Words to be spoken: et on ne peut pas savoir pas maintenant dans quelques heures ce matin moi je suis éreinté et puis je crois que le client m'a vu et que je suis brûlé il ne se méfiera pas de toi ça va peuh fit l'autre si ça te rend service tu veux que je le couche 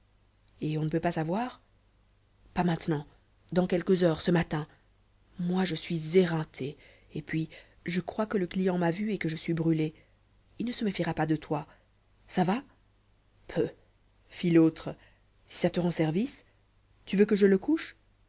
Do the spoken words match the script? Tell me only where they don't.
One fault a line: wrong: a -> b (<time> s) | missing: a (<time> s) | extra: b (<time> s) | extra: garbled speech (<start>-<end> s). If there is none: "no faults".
no faults